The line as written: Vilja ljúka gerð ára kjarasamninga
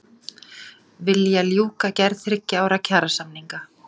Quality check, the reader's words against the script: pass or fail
fail